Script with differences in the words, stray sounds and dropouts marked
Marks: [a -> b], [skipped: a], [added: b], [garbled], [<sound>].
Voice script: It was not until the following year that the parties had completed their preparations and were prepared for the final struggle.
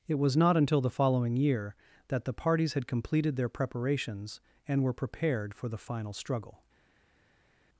It was not until the following year that the parties had completed their preparations and were prepared for the final struggle.